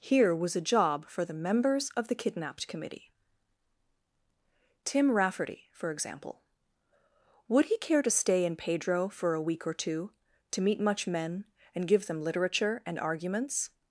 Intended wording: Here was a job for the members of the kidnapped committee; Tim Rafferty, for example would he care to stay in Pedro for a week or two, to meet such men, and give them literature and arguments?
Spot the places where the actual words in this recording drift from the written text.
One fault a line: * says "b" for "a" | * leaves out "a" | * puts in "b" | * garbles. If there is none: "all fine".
* says "much" for "such"